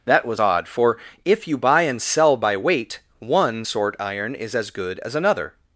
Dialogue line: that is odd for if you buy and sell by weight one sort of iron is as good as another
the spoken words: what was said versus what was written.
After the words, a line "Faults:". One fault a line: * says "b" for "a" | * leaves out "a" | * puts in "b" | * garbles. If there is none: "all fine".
that was odd for if you buy and sell by weight one sort iron is as good as another
Faults:
* says "was" for "is"
* leaves out "of"